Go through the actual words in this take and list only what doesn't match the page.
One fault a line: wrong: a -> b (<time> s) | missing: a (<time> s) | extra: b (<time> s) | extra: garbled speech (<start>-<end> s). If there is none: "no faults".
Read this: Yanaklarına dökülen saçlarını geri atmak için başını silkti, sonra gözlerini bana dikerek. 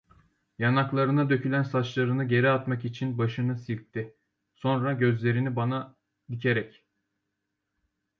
no faults